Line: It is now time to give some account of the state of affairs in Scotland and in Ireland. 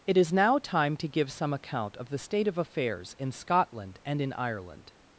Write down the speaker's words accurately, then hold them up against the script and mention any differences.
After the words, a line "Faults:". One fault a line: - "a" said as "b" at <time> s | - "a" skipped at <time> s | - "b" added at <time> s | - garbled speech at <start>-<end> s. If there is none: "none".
It is now time to give some account of the state of affairs in Scotland and in Ireland.
Faults:
none